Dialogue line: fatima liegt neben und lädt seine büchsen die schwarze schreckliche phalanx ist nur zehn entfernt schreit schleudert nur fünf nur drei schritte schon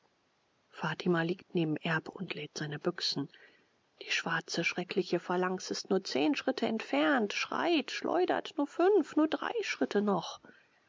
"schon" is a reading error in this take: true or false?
true